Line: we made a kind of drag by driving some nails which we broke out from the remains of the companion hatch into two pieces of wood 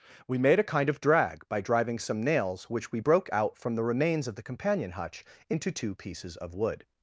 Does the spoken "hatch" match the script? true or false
false